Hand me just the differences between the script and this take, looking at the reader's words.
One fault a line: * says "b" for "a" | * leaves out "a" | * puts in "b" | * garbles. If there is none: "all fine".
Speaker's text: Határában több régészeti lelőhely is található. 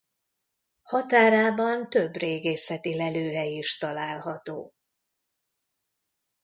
all fine